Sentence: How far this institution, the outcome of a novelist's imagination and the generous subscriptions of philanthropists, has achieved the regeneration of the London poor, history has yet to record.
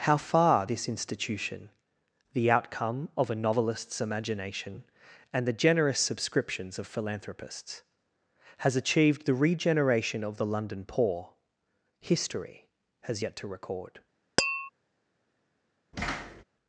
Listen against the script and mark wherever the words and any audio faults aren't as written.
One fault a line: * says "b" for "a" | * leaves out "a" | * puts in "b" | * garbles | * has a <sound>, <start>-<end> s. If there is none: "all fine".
* has a tap, 14.4-14.7 s
* has a thud, 15.9-16.4 s